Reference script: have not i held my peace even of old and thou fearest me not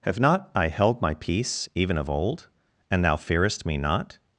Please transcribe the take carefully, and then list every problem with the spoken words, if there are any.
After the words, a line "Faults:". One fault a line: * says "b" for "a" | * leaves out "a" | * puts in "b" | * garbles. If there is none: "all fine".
have not i held my peace even of old and thou fearest me not
Faults:
all fine